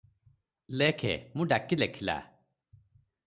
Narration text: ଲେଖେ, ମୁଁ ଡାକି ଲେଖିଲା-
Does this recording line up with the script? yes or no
yes